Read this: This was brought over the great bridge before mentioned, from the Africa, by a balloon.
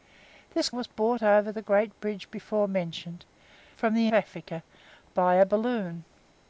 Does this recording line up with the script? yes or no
yes